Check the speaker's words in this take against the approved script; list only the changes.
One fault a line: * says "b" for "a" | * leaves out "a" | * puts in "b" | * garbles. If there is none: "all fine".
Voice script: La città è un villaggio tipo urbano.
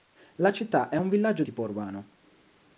all fine